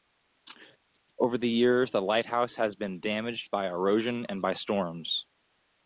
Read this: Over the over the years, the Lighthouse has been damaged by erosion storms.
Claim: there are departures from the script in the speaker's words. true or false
true